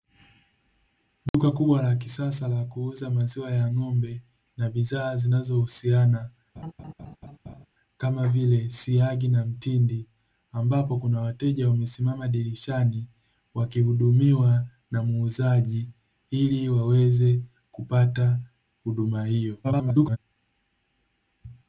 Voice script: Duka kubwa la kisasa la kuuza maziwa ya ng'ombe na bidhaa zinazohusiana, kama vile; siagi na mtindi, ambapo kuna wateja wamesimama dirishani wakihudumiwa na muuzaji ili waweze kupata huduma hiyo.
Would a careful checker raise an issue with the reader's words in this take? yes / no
yes